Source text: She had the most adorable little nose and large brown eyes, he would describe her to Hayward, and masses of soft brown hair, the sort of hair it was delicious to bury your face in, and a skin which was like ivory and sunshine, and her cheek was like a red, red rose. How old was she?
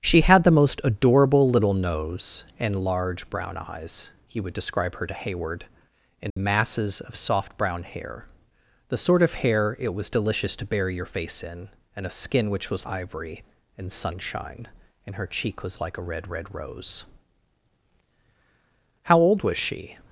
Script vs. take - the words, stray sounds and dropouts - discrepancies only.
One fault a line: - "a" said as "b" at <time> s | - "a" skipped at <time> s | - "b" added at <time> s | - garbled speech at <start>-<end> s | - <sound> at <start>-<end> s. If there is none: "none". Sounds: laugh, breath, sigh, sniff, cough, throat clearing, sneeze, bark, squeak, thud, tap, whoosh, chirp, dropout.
- dropout at 6.3-6.4 s
- "like" skipped at 12.9 s